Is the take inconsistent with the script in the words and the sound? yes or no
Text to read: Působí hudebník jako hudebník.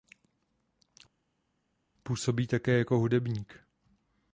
yes